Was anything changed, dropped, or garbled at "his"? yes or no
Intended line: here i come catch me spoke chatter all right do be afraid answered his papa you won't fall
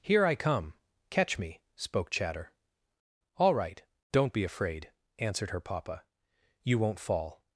yes